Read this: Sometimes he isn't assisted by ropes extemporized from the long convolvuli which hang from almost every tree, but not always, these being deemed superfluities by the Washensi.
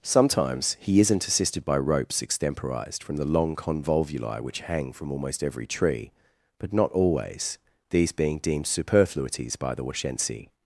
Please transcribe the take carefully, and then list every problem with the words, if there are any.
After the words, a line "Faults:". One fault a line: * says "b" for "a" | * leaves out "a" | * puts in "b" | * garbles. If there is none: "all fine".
Sometimes he isn't assisted by ropes extemporized from the long convolvuli which hang from almost every tree, but not always, these being deemed superfluities by the Washensi.
Faults:
all fine